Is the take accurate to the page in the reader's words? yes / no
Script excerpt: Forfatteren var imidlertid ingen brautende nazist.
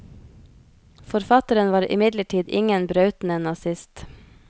yes